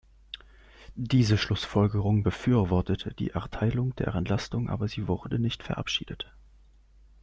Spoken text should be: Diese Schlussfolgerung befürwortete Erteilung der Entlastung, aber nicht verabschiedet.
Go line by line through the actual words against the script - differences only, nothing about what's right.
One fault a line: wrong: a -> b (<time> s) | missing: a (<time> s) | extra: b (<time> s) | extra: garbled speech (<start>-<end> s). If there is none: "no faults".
extra: die (3.1 s)
extra: sie wurde (4.9 s)